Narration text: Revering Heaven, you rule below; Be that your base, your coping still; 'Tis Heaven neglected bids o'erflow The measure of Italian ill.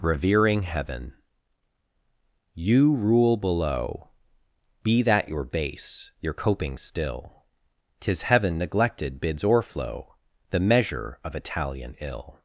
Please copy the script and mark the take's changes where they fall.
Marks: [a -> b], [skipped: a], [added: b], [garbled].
Revering Heaven, you rule below; Be that your base, your coping still; 'Tis Heaven neglected bids o'erflow The measure of Italian ill.